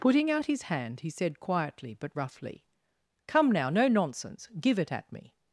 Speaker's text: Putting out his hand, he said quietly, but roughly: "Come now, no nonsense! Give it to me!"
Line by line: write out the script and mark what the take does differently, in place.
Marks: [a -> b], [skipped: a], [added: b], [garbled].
Putting out his hand, he said quietly, but roughly: "Come now, no nonsense! Give it [to -> at] me!"